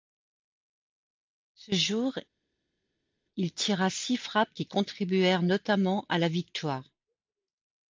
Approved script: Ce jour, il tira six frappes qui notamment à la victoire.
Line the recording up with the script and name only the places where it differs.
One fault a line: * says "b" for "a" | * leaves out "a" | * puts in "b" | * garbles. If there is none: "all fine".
* puts in "contribuèrent"